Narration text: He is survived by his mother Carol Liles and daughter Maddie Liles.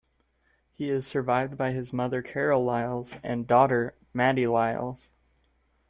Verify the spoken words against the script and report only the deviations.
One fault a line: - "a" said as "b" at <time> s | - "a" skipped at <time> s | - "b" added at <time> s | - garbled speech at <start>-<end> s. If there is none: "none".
none